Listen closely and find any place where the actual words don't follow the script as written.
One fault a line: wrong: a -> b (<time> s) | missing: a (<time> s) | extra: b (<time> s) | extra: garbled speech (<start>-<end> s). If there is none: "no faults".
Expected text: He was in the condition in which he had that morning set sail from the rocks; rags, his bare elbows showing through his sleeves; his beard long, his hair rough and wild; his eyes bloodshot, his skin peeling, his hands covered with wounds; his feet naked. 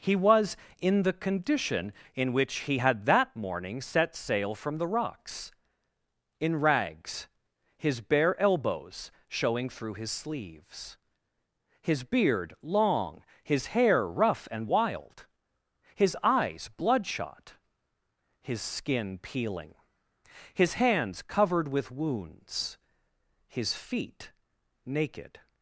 extra: in (6.4 s)